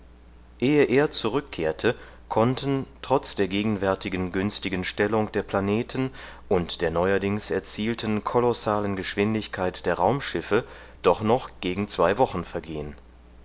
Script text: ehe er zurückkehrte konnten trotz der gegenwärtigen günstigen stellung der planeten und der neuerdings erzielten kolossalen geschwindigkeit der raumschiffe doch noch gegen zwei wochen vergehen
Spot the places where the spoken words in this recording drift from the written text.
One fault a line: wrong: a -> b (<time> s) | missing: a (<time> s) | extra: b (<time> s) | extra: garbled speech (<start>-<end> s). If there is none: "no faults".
no faults